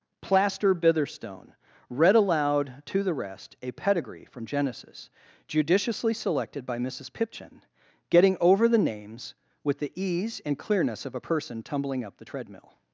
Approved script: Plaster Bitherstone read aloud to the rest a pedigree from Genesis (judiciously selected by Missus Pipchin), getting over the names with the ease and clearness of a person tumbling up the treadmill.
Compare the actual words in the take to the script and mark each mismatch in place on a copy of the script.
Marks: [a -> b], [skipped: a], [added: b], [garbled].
Plaster Bitherstone read aloud to the rest a pedigree from Genesis (judiciously selected by Missus Pipchin), getting over the names with the ease and clearness of a person tumbling up the treadmill.